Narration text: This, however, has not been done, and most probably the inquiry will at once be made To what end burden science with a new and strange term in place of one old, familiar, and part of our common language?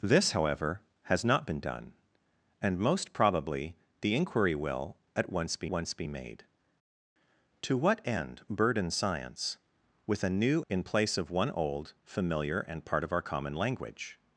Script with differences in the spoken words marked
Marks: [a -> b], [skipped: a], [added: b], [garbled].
This, however, has not been done, and most probably the inquiry will at once be [added: once be] made To what end burden science with a new [skipped: and strange term] in place of one old, familiar, and part of our common language?